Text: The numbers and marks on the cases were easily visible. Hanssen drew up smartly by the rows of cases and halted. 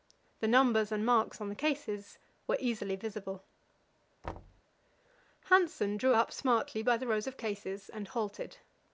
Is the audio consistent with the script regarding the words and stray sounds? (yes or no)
no